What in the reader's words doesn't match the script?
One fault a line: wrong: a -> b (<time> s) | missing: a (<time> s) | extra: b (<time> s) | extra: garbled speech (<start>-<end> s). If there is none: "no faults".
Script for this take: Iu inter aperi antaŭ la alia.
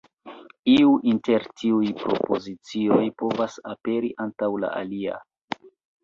extra: tiuj propozicioj povas (1.6 s)